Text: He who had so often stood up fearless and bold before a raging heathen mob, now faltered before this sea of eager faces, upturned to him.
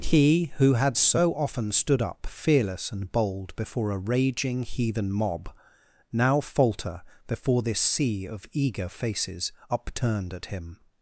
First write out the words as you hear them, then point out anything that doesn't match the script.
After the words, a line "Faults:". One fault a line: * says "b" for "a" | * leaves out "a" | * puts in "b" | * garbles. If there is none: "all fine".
He who had so often stood up fearless and bold before a raging heathen mob, now falter before this sea of eager faces, upturned at him.
Faults:
* says "falter" for "faltered"
* says "at" for "to"